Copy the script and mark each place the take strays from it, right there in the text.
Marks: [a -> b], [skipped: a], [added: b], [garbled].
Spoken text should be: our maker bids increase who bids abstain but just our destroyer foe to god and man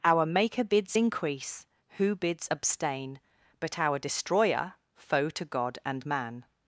our maker bids increase who bids abstain but [skipped: just] our destroyer foe to god and man